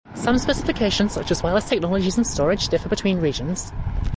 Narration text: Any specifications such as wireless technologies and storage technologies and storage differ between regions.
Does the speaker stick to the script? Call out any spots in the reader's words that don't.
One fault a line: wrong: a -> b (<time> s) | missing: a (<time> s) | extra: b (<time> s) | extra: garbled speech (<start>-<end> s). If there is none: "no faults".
wrong: Any -> Some (0.1 s)
missing: technologies and storage (2.7 s)